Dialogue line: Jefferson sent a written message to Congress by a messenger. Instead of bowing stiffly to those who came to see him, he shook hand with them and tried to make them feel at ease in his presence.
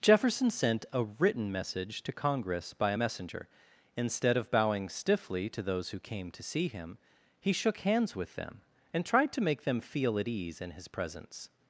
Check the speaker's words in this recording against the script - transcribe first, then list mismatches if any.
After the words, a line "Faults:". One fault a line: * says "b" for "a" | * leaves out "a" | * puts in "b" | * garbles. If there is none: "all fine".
Jefferson sent a written message to Congress by a messenger. Instead of bowing stiffly to those who came to see him, he shook hands with them and tried to make them feel at ease in his presence.
Faults:
* says "hands" for "hand"